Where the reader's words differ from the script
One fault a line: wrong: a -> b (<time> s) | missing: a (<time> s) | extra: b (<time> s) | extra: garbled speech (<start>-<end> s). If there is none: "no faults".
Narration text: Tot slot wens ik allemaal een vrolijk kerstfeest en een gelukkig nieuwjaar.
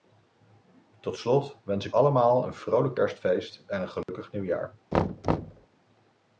no faults